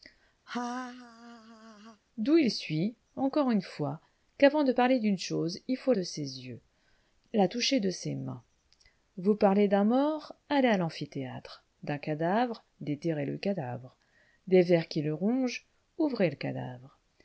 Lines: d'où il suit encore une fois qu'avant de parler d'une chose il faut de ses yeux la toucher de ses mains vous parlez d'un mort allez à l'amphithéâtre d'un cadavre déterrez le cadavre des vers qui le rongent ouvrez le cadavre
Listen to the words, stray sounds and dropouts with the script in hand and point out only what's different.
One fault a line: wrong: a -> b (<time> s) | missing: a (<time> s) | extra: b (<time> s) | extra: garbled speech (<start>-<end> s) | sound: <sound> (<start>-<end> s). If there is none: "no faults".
sound: laugh (0.5-2.0 s)